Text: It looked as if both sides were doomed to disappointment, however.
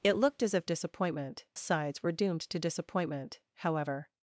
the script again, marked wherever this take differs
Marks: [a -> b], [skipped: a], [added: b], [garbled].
It looked as if [both -> disappointment] sides were doomed to disappointment, however.